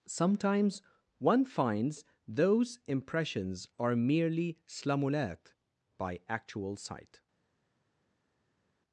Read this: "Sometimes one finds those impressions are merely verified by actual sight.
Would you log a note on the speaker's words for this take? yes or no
yes